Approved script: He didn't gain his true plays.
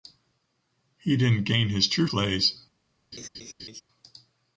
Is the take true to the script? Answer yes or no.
yes